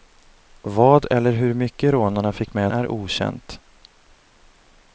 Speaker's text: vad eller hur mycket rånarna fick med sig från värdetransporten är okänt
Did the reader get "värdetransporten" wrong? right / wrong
wrong